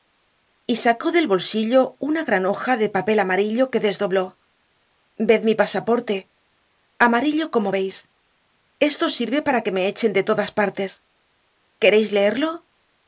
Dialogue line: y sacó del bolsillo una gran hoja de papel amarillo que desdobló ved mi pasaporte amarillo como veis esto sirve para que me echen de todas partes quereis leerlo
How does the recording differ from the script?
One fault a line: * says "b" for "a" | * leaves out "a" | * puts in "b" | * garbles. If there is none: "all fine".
all fine